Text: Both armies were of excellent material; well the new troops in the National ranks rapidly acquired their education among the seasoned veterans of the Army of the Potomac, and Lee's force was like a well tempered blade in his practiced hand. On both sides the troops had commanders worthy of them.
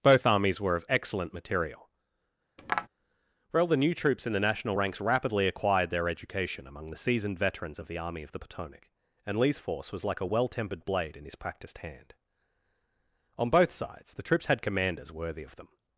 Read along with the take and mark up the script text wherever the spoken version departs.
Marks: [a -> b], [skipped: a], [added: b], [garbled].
Both armies were of excellent material; well the new troops in the National ranks rapidly acquired their education among the seasoned veterans of the Army of the Potomac, and Lee's force was like a well tempered blade in his practiced hand. On both sides the troops had commanders worthy of them.